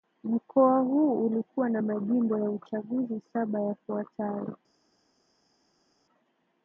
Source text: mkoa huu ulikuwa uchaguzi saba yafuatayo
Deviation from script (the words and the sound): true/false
true